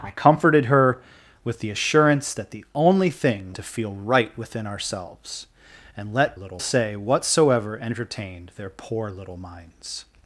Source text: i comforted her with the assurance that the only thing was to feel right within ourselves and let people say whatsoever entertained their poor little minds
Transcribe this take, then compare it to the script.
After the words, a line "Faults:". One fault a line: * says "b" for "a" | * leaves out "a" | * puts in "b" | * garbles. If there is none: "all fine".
i comforted her with the assurance that the only thing to feel right within ourselves and let little say whatsoever entertained their poor little minds
Faults:
* leaves out "was"
* says "little" for "people"